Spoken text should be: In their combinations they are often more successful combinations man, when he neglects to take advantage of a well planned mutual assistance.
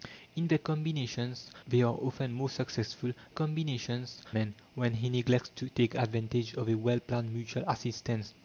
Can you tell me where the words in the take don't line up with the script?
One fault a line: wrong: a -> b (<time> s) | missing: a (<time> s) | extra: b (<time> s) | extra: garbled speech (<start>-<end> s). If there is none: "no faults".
no faults